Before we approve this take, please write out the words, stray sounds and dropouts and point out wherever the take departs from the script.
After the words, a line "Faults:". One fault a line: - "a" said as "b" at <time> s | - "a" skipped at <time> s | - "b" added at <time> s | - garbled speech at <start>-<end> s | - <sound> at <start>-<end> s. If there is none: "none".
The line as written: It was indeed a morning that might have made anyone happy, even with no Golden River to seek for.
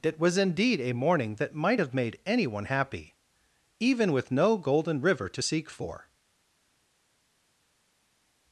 It was indeed a morning that might have made anyone happy, even with no Golden River to seek for.
Faults:
none